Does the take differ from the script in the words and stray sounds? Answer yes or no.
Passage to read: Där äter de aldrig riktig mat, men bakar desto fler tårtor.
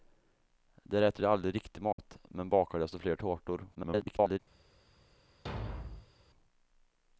yes